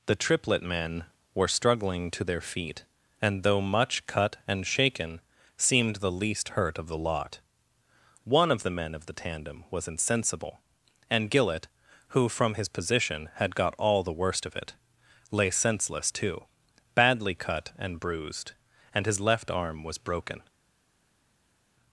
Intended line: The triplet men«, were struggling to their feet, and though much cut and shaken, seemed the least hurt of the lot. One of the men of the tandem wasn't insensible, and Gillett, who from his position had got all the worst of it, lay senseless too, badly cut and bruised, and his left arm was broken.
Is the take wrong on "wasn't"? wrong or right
wrong